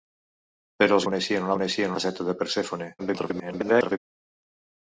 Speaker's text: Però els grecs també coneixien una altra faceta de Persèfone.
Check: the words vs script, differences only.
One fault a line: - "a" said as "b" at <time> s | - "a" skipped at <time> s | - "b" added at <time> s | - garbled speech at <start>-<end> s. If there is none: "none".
- "grecs també" skipped at 1.1 s
- "altra" said as "coneixien" at 1.6 s
- garbled speech at 3.0-4.0 s